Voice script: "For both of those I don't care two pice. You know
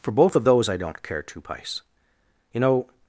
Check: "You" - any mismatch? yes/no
no